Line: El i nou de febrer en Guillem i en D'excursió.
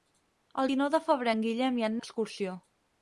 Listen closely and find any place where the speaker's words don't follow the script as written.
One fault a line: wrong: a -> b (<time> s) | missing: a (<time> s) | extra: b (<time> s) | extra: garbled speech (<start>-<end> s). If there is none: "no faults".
no faults